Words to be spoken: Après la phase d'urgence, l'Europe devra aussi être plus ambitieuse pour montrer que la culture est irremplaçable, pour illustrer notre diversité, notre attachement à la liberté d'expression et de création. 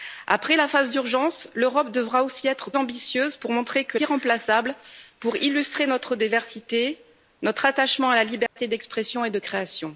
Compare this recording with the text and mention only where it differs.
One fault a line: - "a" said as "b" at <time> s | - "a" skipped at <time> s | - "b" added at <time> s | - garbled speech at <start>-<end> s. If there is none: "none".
- "plus" skipped at 2.7 s
- "la culture est" skipped at 4.0 s